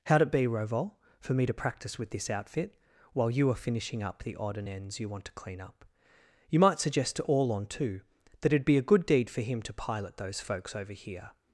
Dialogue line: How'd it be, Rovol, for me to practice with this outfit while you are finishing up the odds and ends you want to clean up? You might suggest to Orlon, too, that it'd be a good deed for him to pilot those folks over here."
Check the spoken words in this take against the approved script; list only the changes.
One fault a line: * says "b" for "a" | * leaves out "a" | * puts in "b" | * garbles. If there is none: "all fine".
* says "odd" for "odds"